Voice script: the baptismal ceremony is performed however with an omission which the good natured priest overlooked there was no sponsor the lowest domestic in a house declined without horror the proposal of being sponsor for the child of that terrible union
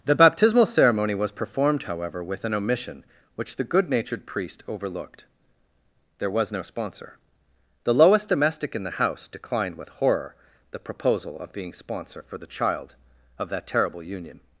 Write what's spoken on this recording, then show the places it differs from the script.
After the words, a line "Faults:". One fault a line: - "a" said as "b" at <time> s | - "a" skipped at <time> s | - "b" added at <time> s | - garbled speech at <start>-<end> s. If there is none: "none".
the baptismal ceremony was performed however with an omission which the good natured priest overlooked there was no sponsor the lowest domestic in the house declined with horror the proposal of being sponsor for the child of that terrible union
Faults:
- "is" said as "was" at 1.1 s
- "a" said as "the" at 8.8 s
- "without" said as "with" at 9.8 s